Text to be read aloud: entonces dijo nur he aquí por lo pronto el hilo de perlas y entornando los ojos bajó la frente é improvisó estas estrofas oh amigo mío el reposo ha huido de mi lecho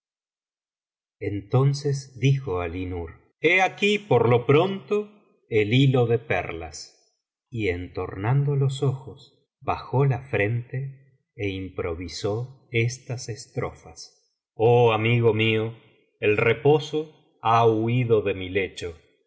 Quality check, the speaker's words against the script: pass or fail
fail